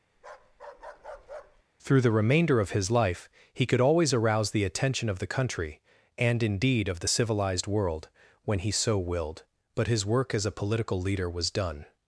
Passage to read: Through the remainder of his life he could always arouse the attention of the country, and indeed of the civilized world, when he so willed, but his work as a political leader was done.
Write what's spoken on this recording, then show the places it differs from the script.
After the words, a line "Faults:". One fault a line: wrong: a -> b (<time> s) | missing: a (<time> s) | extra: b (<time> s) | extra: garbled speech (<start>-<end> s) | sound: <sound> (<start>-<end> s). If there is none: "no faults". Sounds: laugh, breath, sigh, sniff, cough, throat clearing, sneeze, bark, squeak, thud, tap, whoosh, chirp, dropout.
Through the remainder of his life he could always arouse the attention of the country, and indeed of the civilized world, when he so willed, but his work as a political leader was done.
Faults:
sound: bark (0.2-1.6 s)